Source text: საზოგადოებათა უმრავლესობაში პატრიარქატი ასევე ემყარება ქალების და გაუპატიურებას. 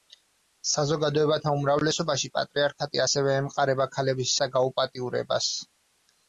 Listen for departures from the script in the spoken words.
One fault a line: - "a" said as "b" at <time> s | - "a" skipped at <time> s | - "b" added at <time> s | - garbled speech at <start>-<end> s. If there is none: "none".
none